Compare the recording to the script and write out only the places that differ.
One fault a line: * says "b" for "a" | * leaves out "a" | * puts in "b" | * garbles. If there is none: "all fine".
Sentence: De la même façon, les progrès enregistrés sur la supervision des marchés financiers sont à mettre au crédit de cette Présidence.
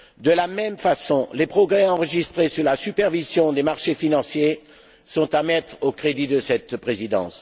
all fine